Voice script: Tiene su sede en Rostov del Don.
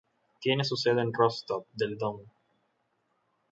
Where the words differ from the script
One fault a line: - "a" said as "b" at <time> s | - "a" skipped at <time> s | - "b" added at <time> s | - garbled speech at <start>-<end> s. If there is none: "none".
none